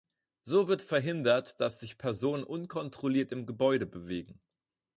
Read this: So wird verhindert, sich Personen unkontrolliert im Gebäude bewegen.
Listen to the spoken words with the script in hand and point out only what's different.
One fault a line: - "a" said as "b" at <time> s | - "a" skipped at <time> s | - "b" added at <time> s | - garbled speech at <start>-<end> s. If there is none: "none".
- "dass" added at 1.6 s